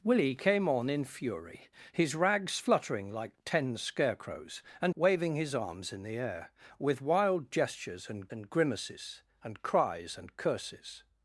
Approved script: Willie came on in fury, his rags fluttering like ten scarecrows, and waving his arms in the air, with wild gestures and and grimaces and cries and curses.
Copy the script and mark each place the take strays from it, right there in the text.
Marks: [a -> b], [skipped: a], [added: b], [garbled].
Willie came on in fury, his rags fluttering like ten scarecrows, and waving his arms in the air, with wild gestures and and grimaces and cries and curses.